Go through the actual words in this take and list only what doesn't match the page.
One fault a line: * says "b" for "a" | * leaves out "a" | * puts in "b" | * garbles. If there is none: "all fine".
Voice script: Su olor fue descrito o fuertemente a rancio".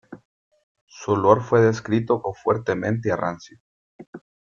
all fine